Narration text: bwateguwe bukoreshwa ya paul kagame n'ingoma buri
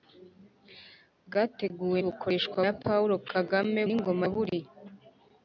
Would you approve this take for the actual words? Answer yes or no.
yes